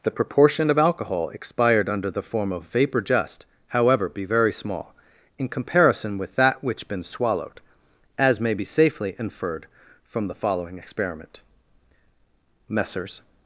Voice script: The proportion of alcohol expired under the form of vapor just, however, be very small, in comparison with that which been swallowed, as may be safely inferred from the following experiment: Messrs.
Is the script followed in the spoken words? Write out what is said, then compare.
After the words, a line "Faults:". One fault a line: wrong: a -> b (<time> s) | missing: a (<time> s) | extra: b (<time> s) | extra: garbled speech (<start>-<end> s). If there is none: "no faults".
The proportion of alcohol expired under the form of vapor just, however, be very small, in comparison with that which been swallowed, as may be safely inferred from the following experiment: Messrs.
Faults:
no faults